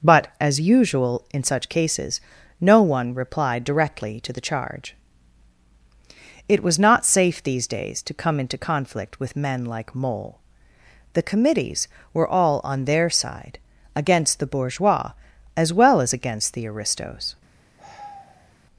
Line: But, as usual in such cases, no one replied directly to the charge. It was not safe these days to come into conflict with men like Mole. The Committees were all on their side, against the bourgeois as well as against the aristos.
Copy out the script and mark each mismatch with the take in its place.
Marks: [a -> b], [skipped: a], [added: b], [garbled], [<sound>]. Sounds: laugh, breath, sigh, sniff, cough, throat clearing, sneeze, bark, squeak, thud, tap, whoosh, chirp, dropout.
But, as usual in such cases, no one replied directly to the charge. It was not safe these days to come into conflict with men like Mole. The Committees were all on their side, against the bourgeois as well as against the aristos. [sigh]